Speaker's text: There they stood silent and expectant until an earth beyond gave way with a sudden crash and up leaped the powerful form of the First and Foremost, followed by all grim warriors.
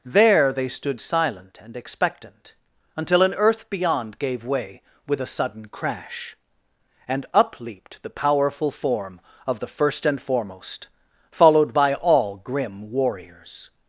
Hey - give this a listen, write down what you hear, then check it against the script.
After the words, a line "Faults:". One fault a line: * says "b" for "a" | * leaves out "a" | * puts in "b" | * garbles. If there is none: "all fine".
There they stood silent and expectant until an earth beyond gave way with a sudden crash and up leaped the powerful form of the First and Foremost, followed by all grim warriors.
Faults:
all fine